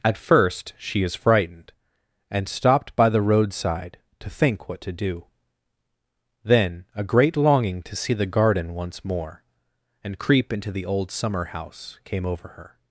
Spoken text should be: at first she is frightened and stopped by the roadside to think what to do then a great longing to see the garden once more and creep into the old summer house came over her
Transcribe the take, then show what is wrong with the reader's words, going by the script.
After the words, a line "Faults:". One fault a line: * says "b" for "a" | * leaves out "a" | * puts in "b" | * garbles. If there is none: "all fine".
at first she is frightened and stopped by the roadside to think what to do then a great longing to see the garden once more and creep into the old summer house came over her
Faults:
all fine